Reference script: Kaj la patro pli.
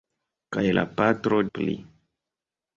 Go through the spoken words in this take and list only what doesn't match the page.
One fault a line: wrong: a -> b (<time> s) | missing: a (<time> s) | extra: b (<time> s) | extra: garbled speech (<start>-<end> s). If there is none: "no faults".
no faults